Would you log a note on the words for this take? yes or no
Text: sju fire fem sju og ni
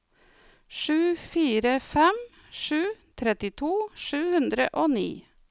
yes